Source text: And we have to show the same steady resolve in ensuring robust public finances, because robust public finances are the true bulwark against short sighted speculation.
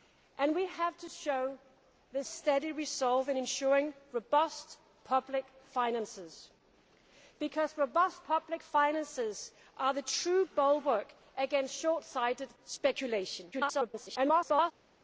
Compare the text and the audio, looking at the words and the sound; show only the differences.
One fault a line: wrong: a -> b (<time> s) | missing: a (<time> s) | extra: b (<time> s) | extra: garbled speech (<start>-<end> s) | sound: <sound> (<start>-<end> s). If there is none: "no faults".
missing: same (2.2 s)
extra: garbled speech (13.5-14.7 s)